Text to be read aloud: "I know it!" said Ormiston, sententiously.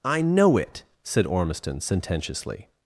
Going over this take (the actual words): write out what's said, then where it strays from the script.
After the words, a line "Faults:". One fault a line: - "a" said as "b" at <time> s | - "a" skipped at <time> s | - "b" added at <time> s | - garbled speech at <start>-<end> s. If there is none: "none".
"I know it!" said Ormiston, sententiously.
Faults:
none